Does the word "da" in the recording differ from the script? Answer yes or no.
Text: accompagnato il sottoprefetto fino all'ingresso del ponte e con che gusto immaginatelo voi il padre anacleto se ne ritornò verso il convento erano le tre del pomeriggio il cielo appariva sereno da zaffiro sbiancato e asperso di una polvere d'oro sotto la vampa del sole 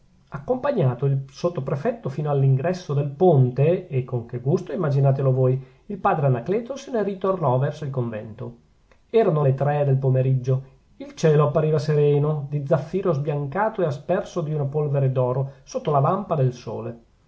yes